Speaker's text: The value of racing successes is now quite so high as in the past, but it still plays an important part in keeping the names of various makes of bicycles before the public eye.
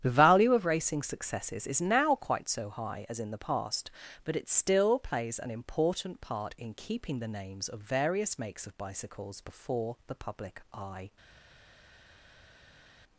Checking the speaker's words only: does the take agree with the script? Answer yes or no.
yes